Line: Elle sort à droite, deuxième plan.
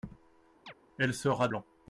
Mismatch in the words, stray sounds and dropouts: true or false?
true